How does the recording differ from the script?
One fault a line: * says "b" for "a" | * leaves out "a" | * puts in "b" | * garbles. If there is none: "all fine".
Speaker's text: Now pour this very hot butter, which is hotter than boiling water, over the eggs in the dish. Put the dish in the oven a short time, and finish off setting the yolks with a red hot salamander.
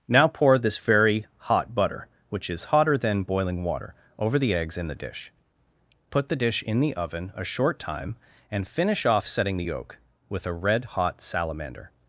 * says "yolk" for "yolks"